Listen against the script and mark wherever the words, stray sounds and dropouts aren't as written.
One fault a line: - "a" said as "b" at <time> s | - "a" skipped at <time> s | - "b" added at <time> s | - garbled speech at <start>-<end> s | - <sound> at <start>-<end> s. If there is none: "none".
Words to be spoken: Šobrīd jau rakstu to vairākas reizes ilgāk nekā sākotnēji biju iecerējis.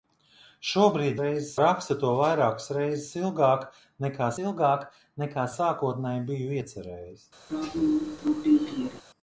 - "jau" said as "reizes" at 1.2 s
- "ilgāk nekā" added at 4.4 s
- throat clearing at 7.5-9.0 s